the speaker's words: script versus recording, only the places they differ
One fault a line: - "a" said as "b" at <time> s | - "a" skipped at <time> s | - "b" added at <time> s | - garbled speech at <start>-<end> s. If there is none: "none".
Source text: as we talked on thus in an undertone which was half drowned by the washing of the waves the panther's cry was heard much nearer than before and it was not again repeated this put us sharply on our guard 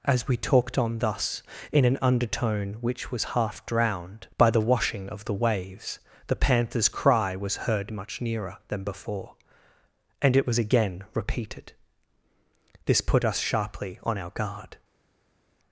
- "not" skipped at 10.6 s